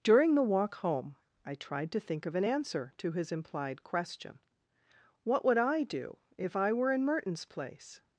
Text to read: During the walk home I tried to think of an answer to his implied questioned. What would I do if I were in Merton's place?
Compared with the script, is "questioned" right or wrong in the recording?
wrong